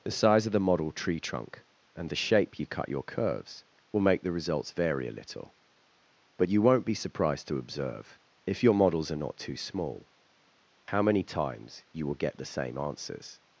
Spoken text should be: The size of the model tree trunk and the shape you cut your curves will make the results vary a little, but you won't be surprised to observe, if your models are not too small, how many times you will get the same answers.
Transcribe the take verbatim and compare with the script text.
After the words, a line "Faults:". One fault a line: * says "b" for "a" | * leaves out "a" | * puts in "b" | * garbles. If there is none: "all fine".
The size of the model tree trunk and the shape you cut your curves will make the results vary a little, but you won't be surprised to observe, if your models are not too small, how many times you will get the same answers.
Faults:
all fine